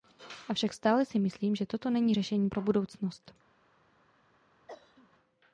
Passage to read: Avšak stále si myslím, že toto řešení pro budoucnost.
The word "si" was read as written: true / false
true